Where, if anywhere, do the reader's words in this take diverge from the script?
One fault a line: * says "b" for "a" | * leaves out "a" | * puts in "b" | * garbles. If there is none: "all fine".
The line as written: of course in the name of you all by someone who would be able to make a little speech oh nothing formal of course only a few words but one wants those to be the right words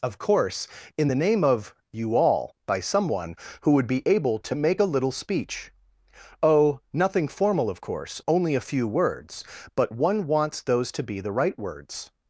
all fine